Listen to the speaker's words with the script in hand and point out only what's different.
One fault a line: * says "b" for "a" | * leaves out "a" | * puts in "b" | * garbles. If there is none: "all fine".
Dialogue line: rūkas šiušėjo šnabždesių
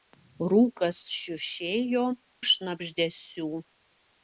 all fine